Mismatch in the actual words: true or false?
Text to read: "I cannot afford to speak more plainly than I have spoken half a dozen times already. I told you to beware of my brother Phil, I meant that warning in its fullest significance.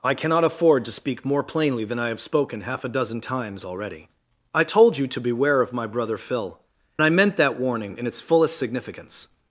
false